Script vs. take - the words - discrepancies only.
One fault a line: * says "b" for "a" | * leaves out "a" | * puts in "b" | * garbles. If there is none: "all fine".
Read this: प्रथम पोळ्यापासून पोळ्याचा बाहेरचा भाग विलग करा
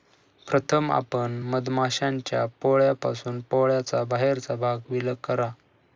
* puts in "आपण मधमाश्यांच्या"